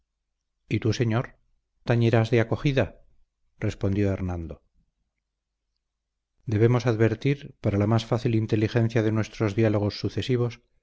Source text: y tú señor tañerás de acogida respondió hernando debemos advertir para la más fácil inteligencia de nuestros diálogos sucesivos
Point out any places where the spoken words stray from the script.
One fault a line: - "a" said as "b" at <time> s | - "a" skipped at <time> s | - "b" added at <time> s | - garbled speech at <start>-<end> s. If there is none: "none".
none